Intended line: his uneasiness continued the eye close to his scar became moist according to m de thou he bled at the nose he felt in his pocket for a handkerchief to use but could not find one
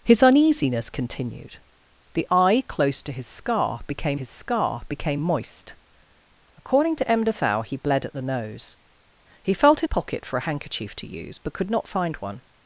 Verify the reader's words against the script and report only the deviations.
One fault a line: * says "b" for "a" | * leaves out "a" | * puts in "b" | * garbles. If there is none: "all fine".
* puts in "his scar became"
* leaves out "his"